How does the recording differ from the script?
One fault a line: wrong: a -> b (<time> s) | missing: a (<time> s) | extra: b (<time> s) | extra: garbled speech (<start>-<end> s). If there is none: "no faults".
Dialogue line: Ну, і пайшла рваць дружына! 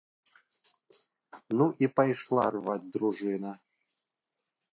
no faults